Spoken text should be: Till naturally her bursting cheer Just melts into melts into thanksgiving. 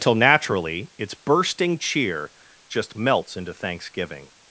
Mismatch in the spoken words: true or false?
true